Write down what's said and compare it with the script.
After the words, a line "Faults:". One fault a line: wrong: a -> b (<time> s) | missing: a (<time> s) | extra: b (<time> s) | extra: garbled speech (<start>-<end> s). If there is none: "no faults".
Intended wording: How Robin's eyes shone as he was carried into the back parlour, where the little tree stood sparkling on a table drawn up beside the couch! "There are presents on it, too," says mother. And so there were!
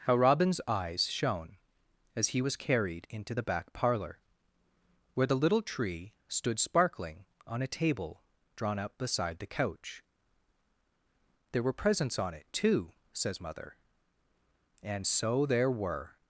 How Robin's eyes shone as he was carried into the back parlour, where the little tree stood sparkling on a table drawn up beside the couch! "There were presents on it, too," says mother. And so there were!
Faults:
wrong: are -> were (11.6 s)